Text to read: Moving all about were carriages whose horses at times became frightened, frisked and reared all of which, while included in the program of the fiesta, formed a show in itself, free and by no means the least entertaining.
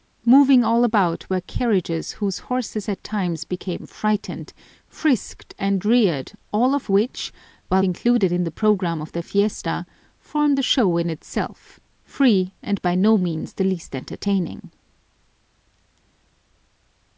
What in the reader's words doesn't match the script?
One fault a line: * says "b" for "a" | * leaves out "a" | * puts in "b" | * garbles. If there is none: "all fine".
all fine